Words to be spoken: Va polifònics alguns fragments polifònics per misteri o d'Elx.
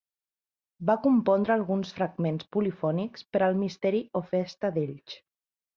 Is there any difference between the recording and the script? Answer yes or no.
yes